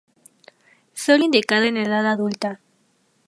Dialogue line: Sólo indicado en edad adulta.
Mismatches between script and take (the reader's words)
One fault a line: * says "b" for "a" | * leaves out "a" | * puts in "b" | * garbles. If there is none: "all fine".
all fine